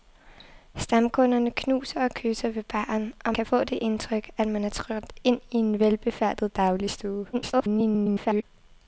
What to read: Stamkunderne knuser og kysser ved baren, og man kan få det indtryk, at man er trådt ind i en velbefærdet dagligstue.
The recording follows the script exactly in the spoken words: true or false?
false